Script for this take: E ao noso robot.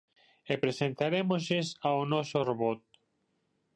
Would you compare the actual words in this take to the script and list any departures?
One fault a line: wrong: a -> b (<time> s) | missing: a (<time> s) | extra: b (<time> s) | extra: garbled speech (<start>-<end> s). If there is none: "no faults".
extra: presentarémoslles (0.6 s)